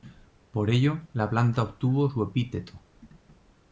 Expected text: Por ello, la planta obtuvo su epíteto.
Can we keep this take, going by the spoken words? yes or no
yes